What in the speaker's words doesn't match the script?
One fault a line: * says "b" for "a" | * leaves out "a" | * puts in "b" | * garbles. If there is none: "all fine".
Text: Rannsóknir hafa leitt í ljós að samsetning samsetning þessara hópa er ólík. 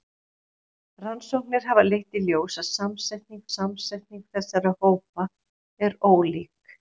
all fine